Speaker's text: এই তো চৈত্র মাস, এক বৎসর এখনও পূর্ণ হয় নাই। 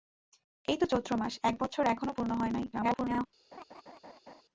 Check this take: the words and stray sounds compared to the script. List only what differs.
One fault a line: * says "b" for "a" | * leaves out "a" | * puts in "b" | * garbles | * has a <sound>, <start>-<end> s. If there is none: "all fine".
* garbles
* has a laugh, 3.5-4.4 s